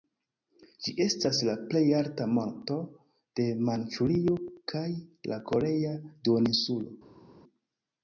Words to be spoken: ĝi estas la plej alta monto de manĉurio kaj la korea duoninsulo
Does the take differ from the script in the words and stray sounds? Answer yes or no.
no